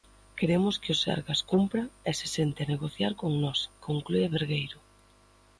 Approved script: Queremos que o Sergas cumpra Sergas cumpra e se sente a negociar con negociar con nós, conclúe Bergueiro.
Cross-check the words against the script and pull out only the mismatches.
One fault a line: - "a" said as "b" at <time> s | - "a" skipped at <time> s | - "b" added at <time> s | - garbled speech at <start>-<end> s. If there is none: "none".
- "Sergas cumpra" skipped at 1.8 s
- "negociar con" skipped at 3.3 s